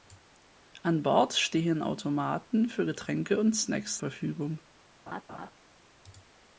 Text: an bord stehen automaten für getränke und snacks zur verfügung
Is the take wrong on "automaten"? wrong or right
right